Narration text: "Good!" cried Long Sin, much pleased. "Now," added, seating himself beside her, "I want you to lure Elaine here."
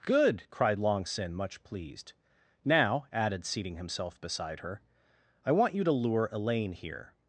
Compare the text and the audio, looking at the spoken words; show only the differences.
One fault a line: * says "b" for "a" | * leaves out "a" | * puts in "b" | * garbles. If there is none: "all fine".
all fine